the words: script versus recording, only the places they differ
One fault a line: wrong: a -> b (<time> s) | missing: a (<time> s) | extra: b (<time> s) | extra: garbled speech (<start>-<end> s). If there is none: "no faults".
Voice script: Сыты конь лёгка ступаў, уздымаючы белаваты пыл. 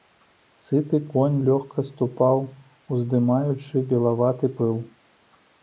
no faults